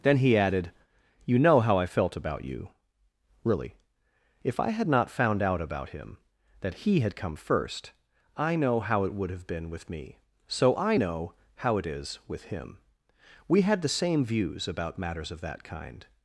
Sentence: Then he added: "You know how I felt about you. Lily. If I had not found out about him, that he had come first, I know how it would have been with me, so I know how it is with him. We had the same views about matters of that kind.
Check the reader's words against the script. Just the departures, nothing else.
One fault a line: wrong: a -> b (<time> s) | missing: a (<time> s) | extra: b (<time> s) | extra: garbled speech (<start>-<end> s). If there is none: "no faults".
wrong: Lily -> Really (3.4 s)